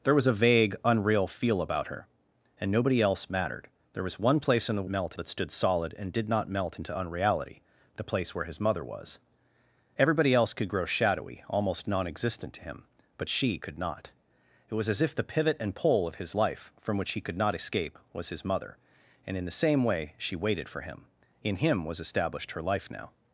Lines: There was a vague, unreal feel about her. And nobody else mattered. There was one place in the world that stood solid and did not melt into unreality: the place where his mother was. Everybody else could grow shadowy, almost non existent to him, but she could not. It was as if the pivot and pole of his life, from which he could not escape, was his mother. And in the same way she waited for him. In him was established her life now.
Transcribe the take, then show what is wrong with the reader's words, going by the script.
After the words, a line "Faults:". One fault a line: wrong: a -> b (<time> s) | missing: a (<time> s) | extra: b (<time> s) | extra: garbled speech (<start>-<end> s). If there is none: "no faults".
There was a vague, unreal feel about her. And nobody else mattered. There was one place in the melt that stood solid and did not melt into unreality: the place where his mother was. Everybody else could grow shadowy, almost non existent to him, but she could not. It was as if the pivot and pole of his life, from which he could not escape, was his mother. And in the same way she waited for him. In him was established her life now.
Faults:
wrong: world -> melt (4.9 s)